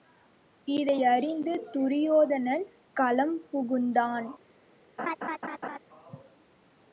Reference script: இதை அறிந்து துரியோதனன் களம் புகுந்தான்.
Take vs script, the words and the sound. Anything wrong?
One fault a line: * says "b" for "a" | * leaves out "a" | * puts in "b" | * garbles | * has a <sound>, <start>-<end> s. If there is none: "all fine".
* has a laugh, 5.0-5.8 s